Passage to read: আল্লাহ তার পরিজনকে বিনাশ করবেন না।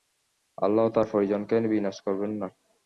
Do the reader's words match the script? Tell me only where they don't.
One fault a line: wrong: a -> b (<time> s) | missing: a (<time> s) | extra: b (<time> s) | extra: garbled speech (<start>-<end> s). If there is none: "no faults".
no faults